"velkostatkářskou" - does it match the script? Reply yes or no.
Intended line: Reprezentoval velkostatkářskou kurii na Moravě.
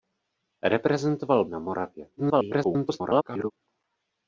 no